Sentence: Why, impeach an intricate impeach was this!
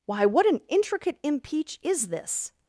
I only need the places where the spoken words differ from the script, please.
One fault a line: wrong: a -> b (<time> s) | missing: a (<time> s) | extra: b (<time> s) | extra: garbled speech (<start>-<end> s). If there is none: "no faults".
wrong: impeach -> what (0.2 s)
wrong: was -> is (1.8 s)